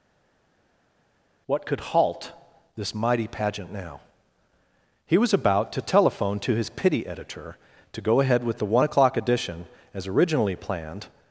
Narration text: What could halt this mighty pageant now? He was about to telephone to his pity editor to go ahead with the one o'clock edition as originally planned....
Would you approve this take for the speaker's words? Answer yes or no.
yes